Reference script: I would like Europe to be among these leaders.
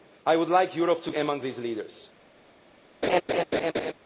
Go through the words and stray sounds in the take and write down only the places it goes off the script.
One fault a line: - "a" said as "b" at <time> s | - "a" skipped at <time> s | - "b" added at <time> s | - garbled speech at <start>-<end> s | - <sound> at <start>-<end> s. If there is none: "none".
- "be" skipped at 1.1 s
- laugh at 3.0-3.9 s